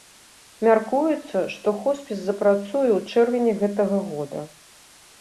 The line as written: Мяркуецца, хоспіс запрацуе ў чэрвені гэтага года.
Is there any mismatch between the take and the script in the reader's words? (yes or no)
yes